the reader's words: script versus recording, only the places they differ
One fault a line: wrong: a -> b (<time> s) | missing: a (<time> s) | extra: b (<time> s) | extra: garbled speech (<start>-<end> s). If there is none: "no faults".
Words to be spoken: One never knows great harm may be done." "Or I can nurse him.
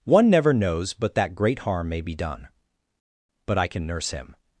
extra: but that (0.9 s)
wrong: Or -> But (3.5 s)